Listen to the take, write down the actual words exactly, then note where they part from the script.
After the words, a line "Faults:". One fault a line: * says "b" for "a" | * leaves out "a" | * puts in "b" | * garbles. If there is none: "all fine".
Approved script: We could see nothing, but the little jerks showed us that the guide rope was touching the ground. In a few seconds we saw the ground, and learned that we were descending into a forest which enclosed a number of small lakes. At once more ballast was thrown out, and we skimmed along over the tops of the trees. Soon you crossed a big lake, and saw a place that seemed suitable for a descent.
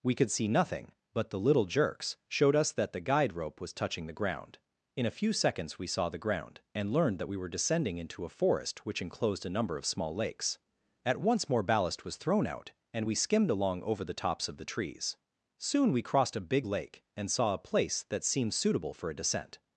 We could see nothing, but the little jerks showed us that the guide rope was touching the ground. In a few seconds we saw the ground, and learned that we were descending into a forest which enclosed a number of small lakes. At once more ballast was thrown out, and we skimmed along over the tops of the trees. Soon we crossed a big lake, and saw a place that seemed suitable for a descent.
Faults:
* says "we" for "you"